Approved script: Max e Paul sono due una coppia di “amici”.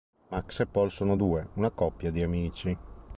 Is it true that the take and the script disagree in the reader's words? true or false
false